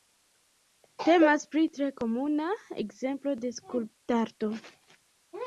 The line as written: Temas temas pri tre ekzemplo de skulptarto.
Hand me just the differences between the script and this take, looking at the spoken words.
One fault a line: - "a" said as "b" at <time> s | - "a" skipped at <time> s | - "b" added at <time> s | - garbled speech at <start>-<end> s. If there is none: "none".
- "temas" skipped at 1.4 s
- "komuna" added at 2.0 s